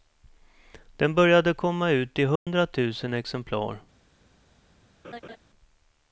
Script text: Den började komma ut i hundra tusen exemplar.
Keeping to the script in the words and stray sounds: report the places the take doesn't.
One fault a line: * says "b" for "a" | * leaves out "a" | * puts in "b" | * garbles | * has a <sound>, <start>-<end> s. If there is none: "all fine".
* has a dropout, 2.4-2.5 s
* has a laugh, 5.0-5.4 s